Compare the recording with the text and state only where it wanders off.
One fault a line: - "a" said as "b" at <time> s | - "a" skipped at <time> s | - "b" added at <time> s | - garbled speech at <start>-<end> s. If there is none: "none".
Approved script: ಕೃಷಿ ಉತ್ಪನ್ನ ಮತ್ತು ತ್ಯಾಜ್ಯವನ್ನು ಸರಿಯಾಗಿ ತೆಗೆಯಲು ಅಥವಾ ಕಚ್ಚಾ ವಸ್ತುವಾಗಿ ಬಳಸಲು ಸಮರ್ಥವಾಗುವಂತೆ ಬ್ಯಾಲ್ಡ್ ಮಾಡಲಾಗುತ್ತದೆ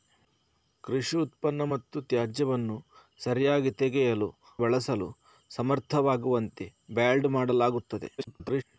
- "ಅಥವಾ ಕಚ್ಚಾ ವಸ್ತುವಾಗಿ" skipped at 4.3 s
- garbled speech at 8.2-8.6 s